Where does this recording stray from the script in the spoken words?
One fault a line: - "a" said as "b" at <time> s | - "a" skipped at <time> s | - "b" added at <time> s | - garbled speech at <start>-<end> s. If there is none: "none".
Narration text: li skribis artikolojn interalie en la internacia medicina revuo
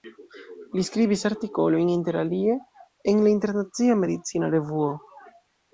none